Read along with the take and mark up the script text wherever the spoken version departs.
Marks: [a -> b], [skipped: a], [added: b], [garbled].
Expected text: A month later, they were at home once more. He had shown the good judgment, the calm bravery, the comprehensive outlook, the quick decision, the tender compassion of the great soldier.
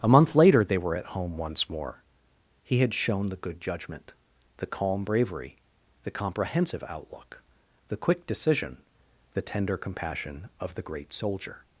A month later, they were at home once more. He had shown the good judgment, the calm bravery, the comprehensive outlook, the quick decision, the tender compassion of the great soldier.